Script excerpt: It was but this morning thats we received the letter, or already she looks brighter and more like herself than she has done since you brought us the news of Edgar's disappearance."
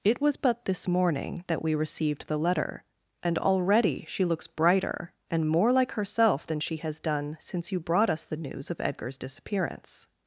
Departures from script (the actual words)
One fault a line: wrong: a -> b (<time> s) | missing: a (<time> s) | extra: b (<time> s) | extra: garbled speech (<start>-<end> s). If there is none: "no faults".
wrong: thats -> that (1.5 s)
wrong: or -> and (3.2 s)